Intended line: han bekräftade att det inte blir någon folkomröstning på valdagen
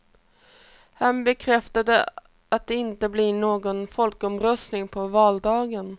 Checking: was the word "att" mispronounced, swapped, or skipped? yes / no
no